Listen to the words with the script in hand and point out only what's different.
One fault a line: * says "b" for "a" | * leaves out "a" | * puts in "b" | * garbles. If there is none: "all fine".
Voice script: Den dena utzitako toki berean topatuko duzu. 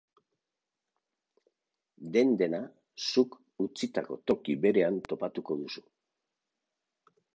* puts in "zuk"